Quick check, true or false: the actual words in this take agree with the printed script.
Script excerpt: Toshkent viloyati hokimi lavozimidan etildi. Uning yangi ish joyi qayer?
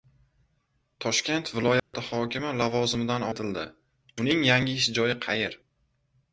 true